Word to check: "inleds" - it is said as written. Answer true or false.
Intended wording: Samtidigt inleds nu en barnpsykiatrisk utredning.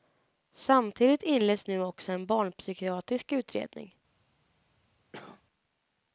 true